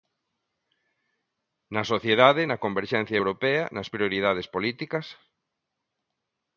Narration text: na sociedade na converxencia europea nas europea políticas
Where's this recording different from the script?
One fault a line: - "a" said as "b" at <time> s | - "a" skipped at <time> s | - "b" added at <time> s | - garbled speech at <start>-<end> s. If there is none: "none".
- "europea" said as "prioridades" at 3.9 s